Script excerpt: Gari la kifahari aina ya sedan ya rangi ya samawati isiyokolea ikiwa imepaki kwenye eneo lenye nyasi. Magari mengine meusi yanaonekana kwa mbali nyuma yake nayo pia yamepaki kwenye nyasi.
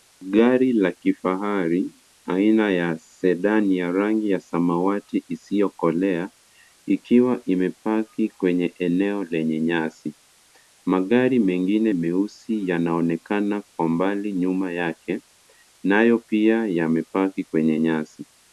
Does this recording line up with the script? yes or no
yes